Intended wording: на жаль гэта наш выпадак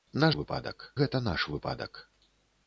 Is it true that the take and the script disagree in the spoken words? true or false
true